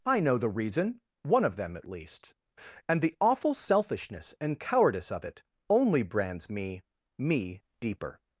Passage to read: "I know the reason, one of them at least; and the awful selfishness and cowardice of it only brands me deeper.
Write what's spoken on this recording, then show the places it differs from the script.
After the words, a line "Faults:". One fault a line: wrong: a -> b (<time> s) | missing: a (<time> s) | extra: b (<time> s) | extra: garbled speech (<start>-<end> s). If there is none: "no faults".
"I know the reason, one of them at least; and the awful selfishness and cowardice of it only brands me me deeper.
Faults:
extra: me (7.2 s)